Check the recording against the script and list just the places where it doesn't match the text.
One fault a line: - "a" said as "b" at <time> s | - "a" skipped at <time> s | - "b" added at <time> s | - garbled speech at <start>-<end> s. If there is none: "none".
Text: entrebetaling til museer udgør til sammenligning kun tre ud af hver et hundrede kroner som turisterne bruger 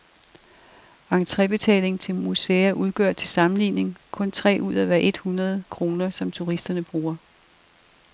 none